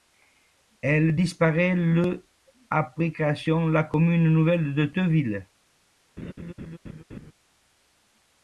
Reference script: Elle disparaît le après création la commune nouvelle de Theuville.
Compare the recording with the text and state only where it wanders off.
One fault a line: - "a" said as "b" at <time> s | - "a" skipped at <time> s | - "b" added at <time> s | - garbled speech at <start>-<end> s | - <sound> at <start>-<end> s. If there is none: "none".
- laugh at 6.2-7.3 s